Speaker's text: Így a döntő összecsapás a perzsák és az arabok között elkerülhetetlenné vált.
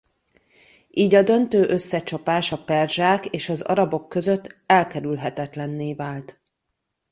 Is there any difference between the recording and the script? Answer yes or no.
no